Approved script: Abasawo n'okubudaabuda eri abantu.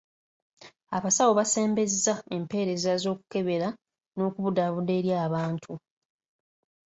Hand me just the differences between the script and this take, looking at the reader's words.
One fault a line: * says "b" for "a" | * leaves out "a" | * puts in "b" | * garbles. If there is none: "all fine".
* puts in "basembezza empeereza z'okukebera"